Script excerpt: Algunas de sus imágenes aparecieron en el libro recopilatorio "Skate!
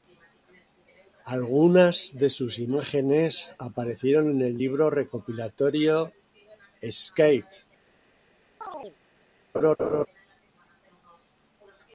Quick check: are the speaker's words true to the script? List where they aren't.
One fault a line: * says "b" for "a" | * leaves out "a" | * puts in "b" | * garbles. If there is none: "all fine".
all fine